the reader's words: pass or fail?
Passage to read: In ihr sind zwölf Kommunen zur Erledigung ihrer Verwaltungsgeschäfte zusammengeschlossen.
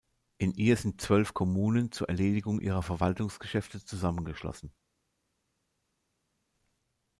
pass